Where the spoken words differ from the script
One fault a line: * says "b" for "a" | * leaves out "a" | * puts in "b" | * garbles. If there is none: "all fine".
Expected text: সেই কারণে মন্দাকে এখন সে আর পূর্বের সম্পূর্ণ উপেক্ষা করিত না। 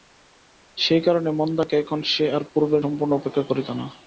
all fine